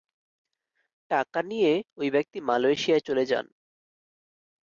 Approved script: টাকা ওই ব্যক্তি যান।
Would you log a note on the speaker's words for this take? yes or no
yes